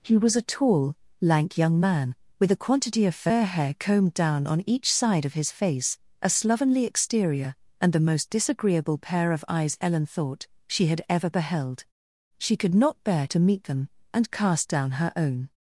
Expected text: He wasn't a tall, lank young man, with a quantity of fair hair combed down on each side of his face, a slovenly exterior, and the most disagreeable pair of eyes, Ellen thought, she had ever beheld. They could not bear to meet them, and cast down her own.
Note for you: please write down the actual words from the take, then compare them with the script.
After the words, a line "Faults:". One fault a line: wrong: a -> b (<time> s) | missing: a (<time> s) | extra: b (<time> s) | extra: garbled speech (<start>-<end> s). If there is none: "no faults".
He was a tall, lank young man, with a quantity of fair hair combed down on each side of his face, a slovenly exterior, and the most disagreeable pair of eyes, Ellen thought, she had ever beheld. She could not bear to meet them, and cast down her own.
Faults:
wrong: wasn't -> was (0.2 s)
wrong: They -> She (12.4 s)